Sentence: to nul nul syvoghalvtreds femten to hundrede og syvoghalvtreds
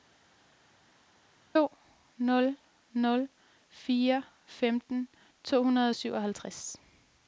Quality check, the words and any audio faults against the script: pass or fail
fail